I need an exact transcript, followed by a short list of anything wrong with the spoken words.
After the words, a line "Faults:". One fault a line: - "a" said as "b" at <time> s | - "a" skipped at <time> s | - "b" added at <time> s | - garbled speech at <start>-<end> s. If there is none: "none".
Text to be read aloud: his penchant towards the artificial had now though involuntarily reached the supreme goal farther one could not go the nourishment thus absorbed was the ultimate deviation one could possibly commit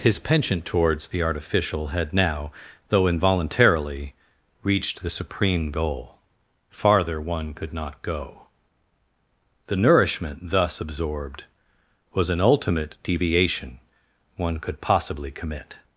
his penchant towards the artificial had now though involuntarily reached the supreme goal farther one could not go the nourishment thus absorbed was an ultimate deviation one could possibly commit
Faults:
- "the" said as "an" at 12.3 s